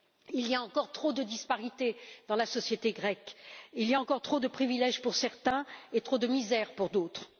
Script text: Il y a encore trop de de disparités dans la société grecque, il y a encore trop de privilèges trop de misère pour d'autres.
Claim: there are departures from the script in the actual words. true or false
true